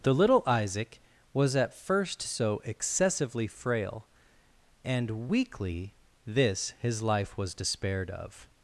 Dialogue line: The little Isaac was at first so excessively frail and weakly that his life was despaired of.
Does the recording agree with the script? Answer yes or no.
no